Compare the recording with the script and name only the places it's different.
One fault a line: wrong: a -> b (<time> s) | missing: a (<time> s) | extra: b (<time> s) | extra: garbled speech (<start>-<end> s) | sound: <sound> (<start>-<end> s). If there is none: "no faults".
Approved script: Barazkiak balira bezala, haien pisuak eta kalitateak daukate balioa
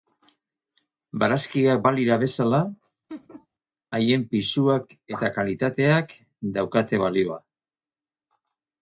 sound: laugh (3.1-3.5 s)